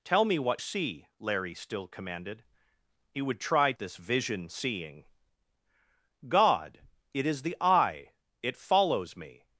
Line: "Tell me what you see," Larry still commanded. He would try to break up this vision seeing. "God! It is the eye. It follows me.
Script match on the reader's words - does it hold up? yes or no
no